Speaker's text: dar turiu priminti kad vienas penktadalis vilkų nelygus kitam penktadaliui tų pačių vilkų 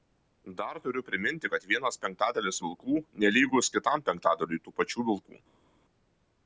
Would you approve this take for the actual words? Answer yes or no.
yes